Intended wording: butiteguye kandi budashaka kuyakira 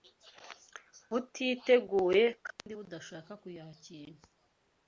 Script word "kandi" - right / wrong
right